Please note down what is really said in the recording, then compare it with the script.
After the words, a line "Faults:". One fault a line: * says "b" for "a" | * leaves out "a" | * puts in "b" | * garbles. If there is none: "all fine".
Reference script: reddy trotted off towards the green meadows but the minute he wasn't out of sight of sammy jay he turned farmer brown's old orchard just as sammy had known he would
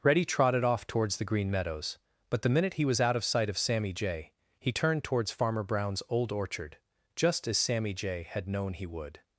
reddy trotted off towards the green meadows but the minute he was out of sight of sammy jay he turned towards farmer brown's old orchard just as sammy jay had known he would
Faults:
* says "was" for "wasn't"
* puts in "towards"
* puts in "jay"